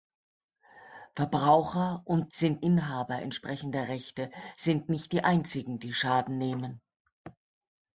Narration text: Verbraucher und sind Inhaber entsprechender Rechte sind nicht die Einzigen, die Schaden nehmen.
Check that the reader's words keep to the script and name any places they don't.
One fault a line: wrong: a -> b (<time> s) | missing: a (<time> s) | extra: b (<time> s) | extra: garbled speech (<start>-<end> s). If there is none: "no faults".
no faults